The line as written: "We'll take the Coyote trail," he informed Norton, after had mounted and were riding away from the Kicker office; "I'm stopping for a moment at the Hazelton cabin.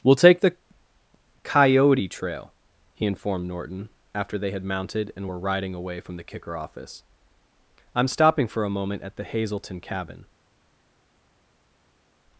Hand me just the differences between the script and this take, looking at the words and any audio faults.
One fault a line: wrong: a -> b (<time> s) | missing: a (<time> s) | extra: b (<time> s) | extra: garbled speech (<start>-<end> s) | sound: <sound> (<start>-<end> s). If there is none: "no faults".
extra: they (4.4 s)